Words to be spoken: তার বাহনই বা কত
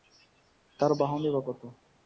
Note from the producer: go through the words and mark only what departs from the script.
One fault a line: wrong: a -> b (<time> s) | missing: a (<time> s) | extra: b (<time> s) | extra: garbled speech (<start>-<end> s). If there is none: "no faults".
no faults